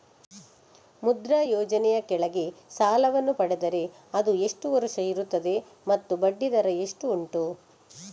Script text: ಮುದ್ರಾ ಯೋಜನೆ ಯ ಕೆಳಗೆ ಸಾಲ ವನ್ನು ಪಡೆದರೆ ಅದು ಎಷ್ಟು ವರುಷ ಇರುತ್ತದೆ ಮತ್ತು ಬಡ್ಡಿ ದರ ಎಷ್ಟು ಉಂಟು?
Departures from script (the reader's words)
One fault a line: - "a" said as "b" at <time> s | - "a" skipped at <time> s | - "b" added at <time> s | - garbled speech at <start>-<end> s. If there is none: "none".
none